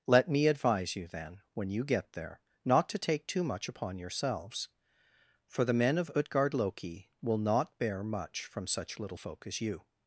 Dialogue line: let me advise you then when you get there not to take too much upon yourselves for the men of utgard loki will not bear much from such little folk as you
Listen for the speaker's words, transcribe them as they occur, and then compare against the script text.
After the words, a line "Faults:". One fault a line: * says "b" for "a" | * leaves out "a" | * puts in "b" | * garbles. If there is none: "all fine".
let me advise you then when you get there not to take too much upon yourselves for the men of utgard loki will not bear much from such little folk as you
Faults:
all fine